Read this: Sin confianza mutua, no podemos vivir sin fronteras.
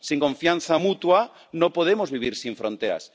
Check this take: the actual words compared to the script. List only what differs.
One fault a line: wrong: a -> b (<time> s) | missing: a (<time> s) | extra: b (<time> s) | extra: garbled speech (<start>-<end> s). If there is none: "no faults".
no faults